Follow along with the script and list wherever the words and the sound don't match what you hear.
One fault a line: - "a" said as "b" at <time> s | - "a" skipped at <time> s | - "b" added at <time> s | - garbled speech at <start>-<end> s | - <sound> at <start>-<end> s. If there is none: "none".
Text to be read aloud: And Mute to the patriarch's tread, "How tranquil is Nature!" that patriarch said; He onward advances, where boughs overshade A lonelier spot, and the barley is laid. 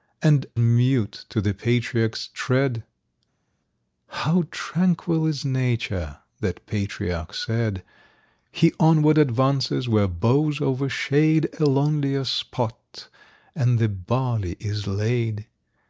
none